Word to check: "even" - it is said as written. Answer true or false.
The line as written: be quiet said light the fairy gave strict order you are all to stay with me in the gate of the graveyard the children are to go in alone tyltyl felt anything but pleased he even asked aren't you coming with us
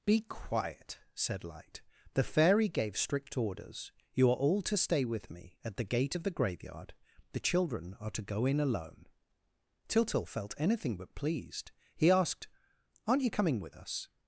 false